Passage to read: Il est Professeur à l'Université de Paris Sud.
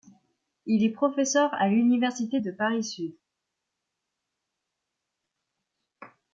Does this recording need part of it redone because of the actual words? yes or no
no